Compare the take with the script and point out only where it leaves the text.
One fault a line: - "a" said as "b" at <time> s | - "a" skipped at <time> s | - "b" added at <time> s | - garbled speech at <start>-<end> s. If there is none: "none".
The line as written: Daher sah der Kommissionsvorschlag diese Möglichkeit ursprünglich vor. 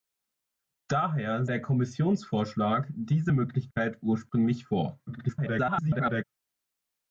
- "sah" skipped at 1.4 s
- garbled speech at 5.1-6.2 s